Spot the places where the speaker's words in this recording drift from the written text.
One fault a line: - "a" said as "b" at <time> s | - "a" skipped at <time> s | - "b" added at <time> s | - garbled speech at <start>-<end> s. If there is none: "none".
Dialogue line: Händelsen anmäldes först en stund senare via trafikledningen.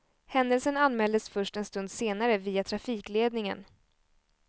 none